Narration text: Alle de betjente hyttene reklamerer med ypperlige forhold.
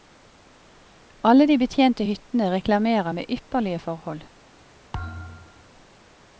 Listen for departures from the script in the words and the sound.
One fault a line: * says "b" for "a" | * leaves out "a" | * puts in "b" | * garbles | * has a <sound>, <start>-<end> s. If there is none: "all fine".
* has a thud, 4.9-5.7 s